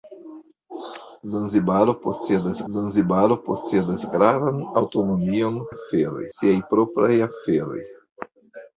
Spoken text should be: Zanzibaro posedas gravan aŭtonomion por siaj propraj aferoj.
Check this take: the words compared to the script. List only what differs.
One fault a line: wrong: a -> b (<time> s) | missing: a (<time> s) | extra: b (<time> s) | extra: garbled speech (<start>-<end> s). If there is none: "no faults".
extra: zanzibaro posedas (2.7 s)
wrong: por -> aferoj (5.7 s)